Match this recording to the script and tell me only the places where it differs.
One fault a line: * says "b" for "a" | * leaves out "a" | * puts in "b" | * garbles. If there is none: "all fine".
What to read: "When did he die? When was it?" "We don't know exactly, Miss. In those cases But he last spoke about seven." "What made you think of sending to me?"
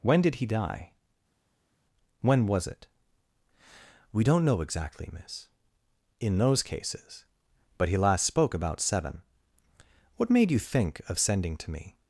all fine